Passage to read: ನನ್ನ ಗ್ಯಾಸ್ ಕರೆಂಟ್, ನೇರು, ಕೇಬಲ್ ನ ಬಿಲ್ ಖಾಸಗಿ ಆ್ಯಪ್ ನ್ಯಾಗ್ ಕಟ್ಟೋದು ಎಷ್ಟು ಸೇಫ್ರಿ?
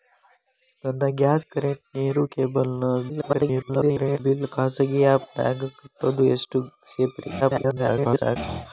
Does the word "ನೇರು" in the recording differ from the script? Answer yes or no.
no